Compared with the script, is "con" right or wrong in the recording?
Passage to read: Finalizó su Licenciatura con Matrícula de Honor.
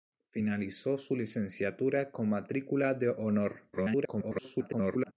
right